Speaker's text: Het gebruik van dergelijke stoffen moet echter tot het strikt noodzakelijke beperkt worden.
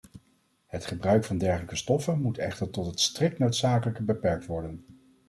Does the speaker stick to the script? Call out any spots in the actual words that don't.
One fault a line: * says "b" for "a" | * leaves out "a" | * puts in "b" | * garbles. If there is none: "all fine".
all fine